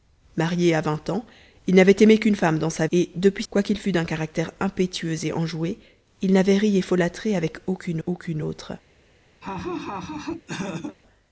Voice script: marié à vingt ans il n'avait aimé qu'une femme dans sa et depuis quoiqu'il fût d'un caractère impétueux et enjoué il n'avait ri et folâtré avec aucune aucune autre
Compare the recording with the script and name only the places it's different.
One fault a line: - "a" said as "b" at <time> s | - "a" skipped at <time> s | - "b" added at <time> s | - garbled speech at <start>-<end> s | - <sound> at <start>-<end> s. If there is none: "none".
- laugh at 9.4-11.0 s